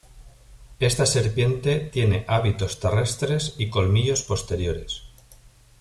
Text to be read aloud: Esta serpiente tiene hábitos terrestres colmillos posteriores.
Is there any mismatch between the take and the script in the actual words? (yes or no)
yes